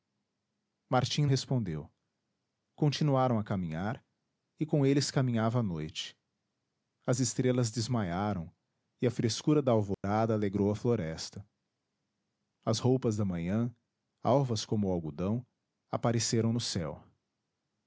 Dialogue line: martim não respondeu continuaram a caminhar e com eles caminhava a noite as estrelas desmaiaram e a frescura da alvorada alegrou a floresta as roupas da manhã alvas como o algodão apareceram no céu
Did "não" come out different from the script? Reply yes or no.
yes